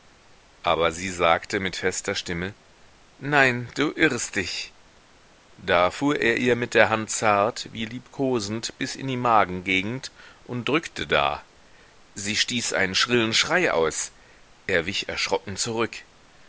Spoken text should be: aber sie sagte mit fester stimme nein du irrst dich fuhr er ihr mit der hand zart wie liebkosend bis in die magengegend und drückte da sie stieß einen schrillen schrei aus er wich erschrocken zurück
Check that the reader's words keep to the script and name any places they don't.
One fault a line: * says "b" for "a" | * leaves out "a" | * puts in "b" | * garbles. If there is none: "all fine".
* puts in "da"